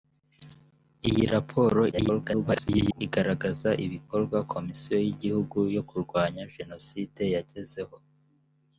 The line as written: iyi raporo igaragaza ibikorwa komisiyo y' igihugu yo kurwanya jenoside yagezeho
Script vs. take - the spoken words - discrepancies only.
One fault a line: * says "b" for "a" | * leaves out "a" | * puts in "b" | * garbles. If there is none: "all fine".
* garbles